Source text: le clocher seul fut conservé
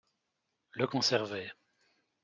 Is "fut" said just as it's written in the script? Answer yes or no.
no